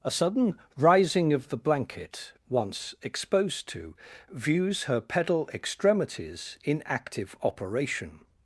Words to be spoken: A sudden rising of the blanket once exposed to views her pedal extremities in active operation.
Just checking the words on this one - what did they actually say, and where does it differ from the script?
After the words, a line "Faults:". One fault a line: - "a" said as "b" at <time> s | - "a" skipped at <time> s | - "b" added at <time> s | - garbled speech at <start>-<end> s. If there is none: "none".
A sudden rising of the blanket once exposed to views her pedal extremities in active operation.
Faults:
none